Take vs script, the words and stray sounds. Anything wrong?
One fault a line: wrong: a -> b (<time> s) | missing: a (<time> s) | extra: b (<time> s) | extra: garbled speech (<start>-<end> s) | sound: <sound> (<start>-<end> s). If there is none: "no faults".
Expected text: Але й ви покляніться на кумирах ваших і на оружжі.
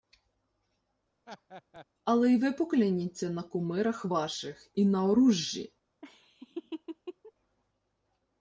sound: laugh (1.3-1.9 s)
sound: laugh (6.0-7.3 s)